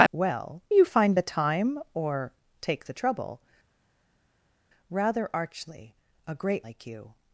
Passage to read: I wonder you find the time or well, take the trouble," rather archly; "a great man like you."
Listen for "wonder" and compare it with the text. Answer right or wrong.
wrong